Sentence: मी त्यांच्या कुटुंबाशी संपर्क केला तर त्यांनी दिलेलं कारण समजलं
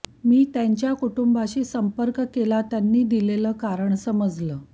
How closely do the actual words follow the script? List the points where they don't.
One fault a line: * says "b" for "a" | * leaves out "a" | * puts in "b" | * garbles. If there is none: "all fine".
* leaves out "तर"